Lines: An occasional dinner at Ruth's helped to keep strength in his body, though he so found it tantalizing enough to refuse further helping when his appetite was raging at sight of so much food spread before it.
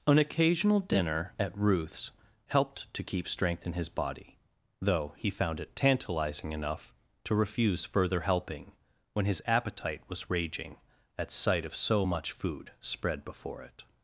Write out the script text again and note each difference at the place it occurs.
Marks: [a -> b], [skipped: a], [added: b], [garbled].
An occasional dinner at Ruth's helped to keep strength in his body, though he [skipped: so] found it tantalizing enough to refuse further helping when his appetite was raging at sight of so much food spread before it.